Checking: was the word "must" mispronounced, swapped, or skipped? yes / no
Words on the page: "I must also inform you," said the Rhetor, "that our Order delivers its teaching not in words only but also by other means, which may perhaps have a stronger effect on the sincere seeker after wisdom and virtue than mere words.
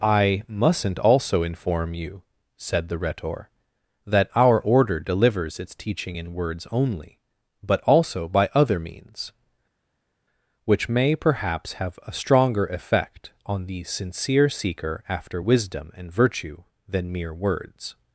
yes